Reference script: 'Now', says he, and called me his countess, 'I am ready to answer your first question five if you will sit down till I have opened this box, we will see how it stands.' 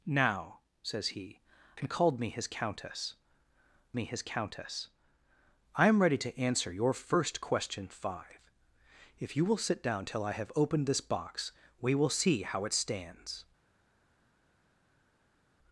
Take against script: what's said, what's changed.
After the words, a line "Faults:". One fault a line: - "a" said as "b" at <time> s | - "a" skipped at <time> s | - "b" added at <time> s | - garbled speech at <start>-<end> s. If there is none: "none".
'Now', says he, and called me his countess me his countess, 'I am ready to answer your first question five if you will sit down till I have opened this box, we will see how it stands.'
Faults:
- "me his countess" added at 3.9 s